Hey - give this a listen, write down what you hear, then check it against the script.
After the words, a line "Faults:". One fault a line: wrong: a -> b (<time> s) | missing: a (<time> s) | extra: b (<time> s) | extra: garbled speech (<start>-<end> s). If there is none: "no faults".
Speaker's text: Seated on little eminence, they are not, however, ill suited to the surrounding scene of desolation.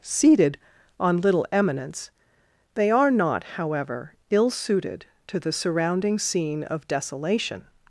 Seated on little eminence, they are not, however, ill suited to the surrounding scene of desolation.
Faults:
no faults